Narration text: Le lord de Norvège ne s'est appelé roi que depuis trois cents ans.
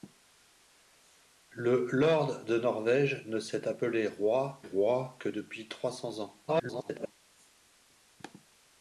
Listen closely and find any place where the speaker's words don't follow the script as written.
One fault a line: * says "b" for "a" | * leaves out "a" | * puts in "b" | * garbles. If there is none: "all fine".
* puts in "roi"
* garbles